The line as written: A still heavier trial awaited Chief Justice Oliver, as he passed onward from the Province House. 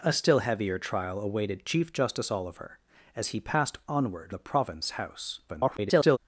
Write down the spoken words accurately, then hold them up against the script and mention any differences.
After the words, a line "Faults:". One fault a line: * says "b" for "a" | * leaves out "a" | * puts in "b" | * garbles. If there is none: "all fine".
A still heavier trial awaited Chief Justice Oliver, as he passed onward the Province House. [garbled]
Faults:
* leaves out "from"
* garbles